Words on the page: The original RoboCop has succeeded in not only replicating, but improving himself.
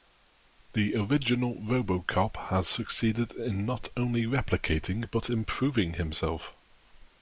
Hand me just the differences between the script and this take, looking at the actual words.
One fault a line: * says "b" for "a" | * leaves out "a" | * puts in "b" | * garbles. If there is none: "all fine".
all fine